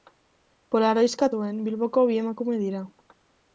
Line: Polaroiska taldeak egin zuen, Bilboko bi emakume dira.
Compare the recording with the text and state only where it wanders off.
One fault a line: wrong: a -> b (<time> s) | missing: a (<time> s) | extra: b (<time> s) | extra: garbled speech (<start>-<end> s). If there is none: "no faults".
missing: taldeak egin (1.3 s)